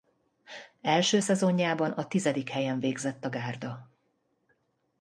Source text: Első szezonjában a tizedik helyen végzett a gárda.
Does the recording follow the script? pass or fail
pass